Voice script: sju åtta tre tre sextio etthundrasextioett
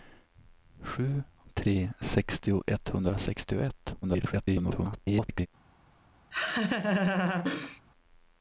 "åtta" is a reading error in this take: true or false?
true